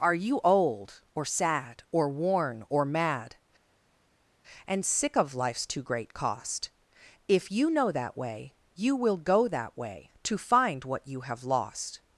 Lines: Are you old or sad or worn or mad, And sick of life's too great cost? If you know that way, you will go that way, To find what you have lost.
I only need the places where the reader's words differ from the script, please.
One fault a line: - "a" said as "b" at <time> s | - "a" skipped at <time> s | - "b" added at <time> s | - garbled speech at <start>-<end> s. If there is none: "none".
none